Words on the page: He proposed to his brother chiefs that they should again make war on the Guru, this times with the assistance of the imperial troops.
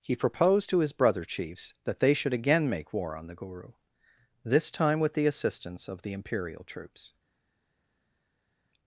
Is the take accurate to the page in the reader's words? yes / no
no